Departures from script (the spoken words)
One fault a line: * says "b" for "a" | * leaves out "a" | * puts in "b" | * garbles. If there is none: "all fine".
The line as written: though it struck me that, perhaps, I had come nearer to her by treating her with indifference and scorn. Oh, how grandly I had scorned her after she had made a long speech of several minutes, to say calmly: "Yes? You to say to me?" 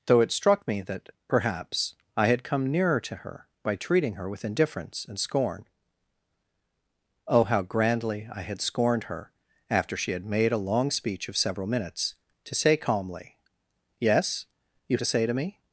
all fine